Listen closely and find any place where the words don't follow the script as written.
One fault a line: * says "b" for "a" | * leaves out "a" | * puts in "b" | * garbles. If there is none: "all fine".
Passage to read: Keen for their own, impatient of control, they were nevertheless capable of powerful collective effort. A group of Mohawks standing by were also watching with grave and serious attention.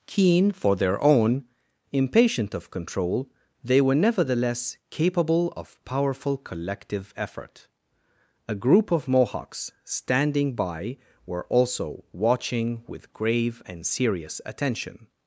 all fine